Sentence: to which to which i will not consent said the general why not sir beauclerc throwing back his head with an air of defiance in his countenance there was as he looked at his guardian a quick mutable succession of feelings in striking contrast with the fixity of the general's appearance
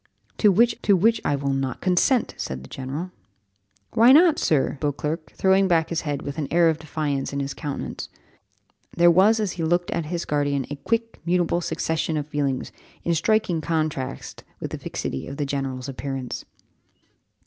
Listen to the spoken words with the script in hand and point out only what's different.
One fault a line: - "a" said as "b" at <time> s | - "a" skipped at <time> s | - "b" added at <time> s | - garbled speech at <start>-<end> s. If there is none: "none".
none